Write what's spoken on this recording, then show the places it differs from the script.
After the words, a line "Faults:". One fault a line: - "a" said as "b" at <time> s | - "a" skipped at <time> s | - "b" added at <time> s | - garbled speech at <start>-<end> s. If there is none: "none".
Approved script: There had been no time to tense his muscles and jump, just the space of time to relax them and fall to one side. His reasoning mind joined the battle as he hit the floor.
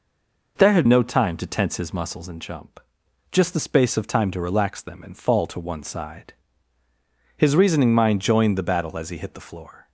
There had no time to tense his muscles and jump, just the space of time to relax them and fall to one side. His reasoning mind joined the battle as he hit the floor.
Faults:
- "been" skipped at 0.9 s